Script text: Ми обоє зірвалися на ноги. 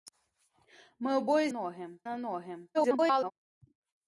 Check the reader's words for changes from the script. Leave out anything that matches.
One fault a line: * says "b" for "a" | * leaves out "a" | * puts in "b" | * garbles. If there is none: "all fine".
* says "ноги" for "зірвалися"
* garbles